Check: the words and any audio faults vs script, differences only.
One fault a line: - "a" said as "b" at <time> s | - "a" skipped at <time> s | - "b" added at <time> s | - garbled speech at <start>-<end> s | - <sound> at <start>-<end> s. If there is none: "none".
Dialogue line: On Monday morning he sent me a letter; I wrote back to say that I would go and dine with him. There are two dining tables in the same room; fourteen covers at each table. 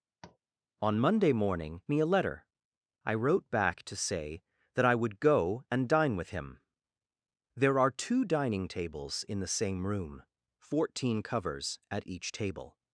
- tap at 0.2-0.4 s
- "he sent" skipped at 1.8 s